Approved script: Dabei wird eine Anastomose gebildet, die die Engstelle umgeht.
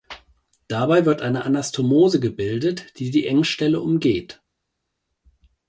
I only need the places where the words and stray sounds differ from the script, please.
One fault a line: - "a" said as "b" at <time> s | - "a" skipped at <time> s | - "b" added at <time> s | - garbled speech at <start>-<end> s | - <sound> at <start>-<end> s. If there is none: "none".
none